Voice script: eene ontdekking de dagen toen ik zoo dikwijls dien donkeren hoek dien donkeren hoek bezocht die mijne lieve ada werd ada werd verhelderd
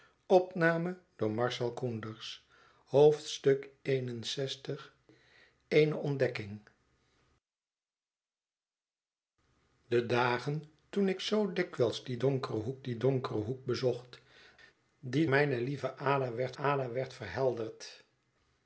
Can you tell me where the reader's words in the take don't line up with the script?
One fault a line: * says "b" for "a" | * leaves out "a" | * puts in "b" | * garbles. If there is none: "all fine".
all fine